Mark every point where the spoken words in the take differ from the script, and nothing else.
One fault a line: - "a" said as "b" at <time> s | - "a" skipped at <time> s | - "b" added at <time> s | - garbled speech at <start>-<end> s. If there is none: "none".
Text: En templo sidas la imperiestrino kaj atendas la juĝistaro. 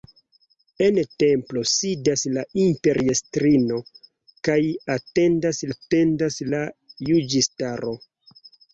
- "atendas" added at 5.7 s